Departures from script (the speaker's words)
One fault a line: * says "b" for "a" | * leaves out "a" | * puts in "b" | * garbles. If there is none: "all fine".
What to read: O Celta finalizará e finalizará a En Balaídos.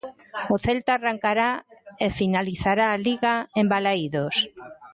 * says "arrancará" for "finalizará"
* puts in "Liga"